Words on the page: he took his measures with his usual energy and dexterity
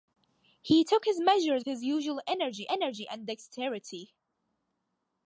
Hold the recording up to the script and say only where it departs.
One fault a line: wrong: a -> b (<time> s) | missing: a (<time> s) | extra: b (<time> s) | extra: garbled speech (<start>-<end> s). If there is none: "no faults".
missing: with (1.7 s)
extra: energy (2.7 s)